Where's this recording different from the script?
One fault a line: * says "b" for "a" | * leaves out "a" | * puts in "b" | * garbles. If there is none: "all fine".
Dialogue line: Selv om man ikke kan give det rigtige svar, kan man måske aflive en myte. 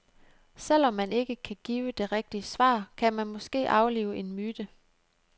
all fine